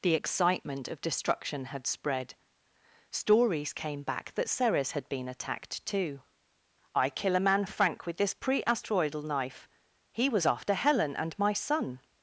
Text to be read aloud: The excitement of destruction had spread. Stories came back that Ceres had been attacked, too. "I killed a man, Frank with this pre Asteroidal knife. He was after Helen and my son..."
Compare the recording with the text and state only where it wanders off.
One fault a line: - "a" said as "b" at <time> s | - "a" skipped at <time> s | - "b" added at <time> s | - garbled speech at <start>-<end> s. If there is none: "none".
- "killed" said as "kill" at 7.1 s